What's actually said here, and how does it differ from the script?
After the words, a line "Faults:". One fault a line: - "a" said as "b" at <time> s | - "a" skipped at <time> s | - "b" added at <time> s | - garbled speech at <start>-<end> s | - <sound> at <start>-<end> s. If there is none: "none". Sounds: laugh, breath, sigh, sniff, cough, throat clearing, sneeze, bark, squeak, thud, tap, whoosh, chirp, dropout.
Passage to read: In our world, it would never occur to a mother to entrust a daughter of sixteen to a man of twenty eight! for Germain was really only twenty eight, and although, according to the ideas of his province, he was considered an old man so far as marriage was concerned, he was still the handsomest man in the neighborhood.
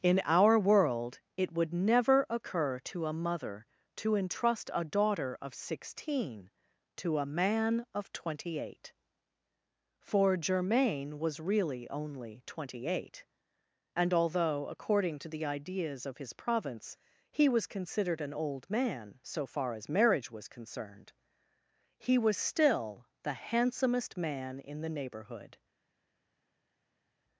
In our world, it would never occur to a mother to entrust a daughter of sixteen to a man of twenty eight! for Germain was really only twenty eight, and although, according to the ideas of his province, he was considered an old man so far as marriage was concerned, he was still the handsomest man in the neighborhood.
Faults:
none